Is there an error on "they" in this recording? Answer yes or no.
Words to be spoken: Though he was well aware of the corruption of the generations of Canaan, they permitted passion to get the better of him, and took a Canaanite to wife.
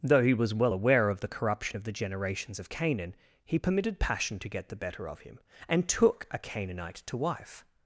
yes